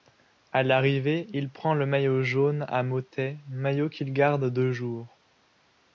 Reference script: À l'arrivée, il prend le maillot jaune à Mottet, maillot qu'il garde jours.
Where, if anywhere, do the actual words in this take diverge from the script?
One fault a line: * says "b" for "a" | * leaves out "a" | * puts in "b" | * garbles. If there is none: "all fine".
* puts in "deux"